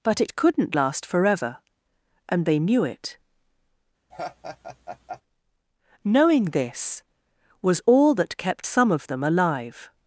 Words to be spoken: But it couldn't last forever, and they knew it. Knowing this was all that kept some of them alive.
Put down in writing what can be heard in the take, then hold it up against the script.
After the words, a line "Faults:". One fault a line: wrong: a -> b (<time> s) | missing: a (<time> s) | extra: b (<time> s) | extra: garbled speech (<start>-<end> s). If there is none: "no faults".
But it couldn't last forever, and they knew it. Knowing this was all that kept some of them alive.
Faults:
no faults